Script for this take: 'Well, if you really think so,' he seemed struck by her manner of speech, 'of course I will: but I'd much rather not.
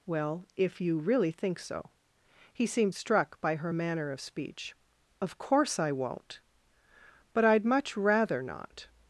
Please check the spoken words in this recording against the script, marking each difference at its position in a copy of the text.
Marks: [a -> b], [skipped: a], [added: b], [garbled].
'Well, if you really think so,' he seemed struck by her manner of speech, 'of course I [will: -> won't] but I'd much rather not.